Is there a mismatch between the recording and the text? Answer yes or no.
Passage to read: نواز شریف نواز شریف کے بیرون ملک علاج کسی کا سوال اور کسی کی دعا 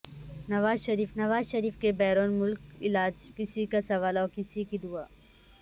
no